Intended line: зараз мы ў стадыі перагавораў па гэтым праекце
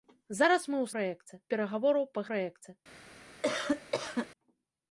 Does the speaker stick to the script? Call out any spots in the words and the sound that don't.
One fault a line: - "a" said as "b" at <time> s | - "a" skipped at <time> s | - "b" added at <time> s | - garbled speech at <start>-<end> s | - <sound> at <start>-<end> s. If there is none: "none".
- "стадыі" said as "праекце" at 1.0 s
- "гэтым" skipped at 2.3 s
- cough at 3.4-4.3 s